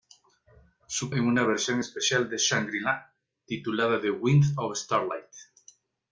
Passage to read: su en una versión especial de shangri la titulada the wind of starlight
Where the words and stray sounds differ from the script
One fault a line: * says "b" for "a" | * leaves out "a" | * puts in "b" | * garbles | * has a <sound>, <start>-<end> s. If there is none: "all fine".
all fine